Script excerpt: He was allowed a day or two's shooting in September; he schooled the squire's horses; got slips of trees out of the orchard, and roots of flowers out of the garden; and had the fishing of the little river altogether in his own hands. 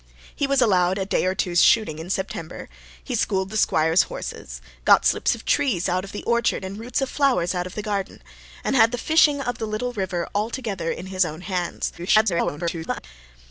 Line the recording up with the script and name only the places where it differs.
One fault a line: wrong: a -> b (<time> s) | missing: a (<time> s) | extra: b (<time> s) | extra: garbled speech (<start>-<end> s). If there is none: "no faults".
extra: garbled speech (12.0-13.1 s)